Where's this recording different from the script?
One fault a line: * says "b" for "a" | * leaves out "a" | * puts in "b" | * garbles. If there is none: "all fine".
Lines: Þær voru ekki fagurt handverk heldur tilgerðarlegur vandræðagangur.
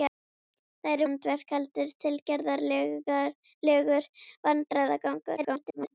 * leaves out "voru ekki fagurt"
* garbles